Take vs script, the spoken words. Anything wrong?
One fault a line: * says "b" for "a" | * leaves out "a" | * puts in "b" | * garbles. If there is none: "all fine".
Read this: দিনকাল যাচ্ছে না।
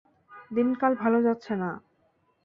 * puts in "ভালো"